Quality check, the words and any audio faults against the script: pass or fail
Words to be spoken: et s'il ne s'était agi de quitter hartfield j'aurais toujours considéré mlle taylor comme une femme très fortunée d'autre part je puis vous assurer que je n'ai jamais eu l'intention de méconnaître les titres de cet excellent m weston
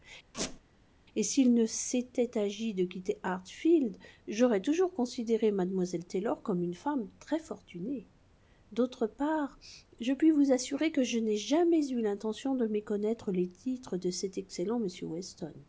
fail